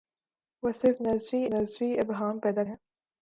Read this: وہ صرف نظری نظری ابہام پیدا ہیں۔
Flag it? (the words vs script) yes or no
no